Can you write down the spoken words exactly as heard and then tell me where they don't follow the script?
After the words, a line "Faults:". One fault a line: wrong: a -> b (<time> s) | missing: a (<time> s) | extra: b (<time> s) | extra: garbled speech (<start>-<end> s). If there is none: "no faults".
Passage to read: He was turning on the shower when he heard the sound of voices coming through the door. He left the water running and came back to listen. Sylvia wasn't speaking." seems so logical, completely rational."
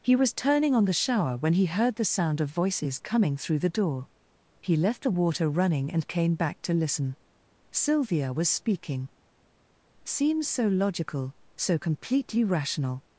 He was turning on the shower when he heard the sound of voices coming through the door. He left the water running and came back to listen. Sylvia was speaking." seems so logical, so completely rational."
Faults:
wrong: wasn't -> was (8.3 s)
extra: so (11.6 s)